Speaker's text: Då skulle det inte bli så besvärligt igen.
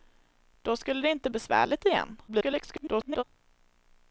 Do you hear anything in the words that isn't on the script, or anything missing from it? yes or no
yes